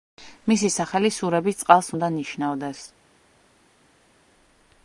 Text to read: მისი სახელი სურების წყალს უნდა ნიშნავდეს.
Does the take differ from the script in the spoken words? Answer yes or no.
no